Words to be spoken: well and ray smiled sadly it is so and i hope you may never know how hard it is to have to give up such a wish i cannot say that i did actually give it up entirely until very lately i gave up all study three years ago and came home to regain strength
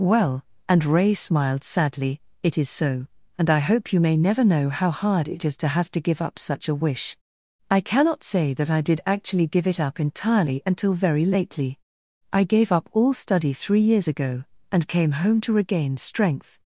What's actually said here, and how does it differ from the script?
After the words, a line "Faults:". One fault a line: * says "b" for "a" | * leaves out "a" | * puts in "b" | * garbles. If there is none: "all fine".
well and ray smiled sadly it is so and i hope you may never know how hard it is to have to give up such a wish i cannot say that i did actually give it up entirely until very lately i gave up all study three years ago and came home to regain strength
Faults:
all fine